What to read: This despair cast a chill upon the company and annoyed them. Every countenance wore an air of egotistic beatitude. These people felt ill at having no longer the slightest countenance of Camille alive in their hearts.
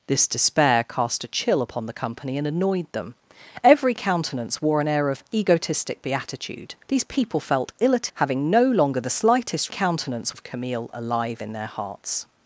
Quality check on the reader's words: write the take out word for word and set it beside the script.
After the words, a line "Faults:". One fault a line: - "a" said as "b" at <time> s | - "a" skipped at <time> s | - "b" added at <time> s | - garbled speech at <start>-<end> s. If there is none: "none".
This despair cast a chill upon the company and annoyed them. Every countenance wore an air of egotistic beatitude. These people felt ill at having no longer the slightest countenance of Camille alive in their hearts.
Faults:
none